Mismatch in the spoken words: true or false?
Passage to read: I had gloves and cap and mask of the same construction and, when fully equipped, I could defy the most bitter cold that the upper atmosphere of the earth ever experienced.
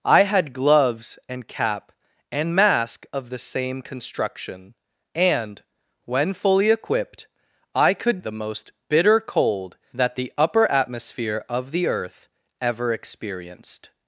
true